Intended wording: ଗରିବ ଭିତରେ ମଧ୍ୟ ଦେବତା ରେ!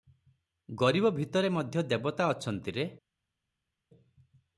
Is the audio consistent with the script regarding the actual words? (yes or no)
no